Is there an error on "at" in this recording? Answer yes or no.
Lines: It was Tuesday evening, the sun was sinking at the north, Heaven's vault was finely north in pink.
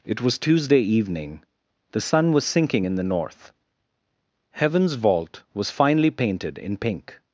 yes